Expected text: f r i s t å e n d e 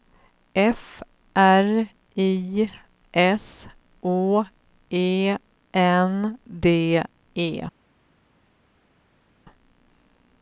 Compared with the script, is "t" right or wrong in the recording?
wrong